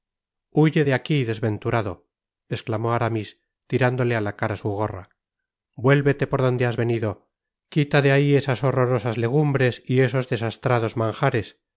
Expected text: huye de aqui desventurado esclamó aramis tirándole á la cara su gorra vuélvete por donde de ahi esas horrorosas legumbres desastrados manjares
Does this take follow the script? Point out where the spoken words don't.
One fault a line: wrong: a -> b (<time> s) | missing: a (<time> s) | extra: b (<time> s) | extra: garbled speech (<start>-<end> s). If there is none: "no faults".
extra: has venido quita (6.7 s)
extra: y esos (9.9 s)